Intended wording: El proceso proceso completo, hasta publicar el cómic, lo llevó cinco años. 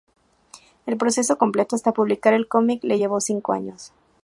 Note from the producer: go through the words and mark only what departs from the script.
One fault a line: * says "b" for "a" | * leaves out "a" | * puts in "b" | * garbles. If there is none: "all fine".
* leaves out "proceso"
* says "le" for "lo"